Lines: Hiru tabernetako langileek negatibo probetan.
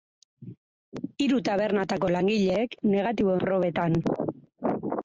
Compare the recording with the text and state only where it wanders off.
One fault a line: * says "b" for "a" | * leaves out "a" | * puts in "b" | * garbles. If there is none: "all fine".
all fine